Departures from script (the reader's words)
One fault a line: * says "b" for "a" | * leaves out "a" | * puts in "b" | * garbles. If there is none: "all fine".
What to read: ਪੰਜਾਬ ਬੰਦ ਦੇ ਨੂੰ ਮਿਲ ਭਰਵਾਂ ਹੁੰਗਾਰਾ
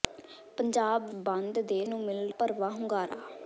all fine